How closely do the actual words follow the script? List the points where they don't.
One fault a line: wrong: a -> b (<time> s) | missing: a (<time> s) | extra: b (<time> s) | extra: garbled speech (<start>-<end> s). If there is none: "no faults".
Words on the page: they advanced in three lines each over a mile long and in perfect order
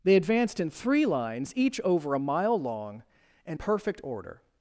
missing: in (3.6 s)